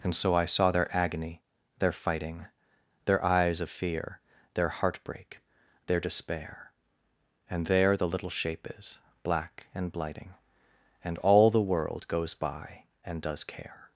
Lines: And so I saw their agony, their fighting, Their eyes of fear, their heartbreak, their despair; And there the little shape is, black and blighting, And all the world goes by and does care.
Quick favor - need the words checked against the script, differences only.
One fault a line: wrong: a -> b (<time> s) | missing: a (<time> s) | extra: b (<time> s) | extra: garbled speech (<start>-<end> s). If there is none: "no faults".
no faults